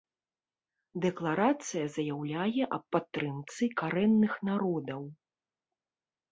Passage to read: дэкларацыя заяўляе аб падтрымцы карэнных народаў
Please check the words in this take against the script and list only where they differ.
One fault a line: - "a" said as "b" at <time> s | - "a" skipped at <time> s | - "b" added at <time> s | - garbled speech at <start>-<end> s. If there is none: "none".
none